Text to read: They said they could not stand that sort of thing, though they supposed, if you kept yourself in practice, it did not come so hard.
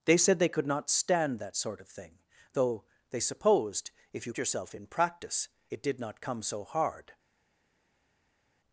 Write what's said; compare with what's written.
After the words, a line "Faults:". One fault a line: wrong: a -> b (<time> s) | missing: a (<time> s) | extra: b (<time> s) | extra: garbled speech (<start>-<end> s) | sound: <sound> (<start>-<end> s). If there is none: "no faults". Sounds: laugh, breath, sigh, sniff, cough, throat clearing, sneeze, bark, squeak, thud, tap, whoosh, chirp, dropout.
They said they could not stand that sort of thing, though they supposed, if you yourself in practice, it did not come so hard.
Faults:
missing: kept (4.3 s)